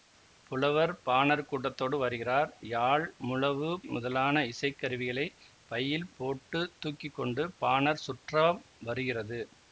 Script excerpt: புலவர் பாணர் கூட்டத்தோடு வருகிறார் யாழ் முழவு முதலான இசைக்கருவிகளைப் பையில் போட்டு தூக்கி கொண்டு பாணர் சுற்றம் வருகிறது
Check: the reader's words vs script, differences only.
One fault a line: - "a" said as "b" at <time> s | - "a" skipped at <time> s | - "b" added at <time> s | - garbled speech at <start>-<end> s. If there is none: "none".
none